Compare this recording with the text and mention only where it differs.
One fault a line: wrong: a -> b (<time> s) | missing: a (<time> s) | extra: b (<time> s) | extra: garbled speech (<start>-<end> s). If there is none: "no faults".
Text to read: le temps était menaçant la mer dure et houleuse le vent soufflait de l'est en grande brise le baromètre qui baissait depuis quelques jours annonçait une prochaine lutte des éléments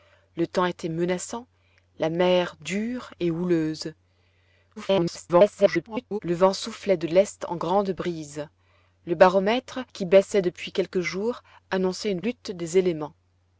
extra: garbled speech (4.8-6.2 s)
missing: prochaine (12.2 s)